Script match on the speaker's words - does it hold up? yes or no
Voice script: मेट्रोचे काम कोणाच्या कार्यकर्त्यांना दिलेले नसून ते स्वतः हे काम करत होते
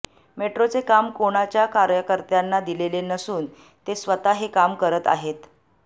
no